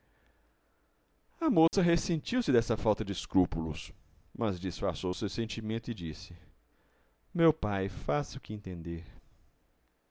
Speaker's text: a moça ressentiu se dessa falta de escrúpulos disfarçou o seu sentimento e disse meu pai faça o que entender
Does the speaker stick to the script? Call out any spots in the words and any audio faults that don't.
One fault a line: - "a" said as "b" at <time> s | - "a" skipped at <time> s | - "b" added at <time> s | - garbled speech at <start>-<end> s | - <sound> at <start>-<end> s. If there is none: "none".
- dropout at 1.7-1.7 s
- "mas" added at 4.4 s